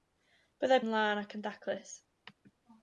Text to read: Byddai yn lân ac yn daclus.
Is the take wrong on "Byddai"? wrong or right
right